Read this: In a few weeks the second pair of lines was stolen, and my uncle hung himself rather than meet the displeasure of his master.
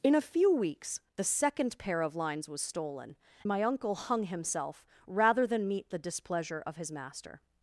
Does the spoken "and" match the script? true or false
false